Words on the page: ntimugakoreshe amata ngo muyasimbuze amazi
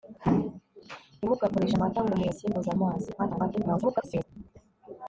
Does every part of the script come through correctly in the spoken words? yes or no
no